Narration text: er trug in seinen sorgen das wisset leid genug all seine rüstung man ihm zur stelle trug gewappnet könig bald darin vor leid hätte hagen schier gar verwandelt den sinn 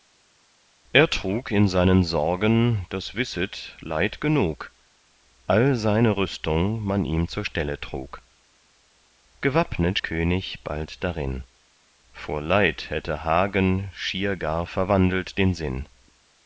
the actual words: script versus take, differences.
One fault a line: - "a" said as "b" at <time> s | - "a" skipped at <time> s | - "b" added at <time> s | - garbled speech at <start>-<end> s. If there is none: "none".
none